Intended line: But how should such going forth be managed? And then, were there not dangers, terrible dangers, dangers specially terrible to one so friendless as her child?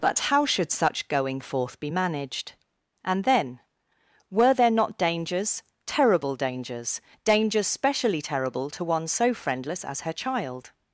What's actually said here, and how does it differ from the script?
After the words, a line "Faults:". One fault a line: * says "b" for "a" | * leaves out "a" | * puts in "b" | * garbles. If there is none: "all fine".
But how should such going forth be managed? And then, were there not dangers, terrible dangers, dangers specially terrible to one so friendless as her child?
Faults:
all fine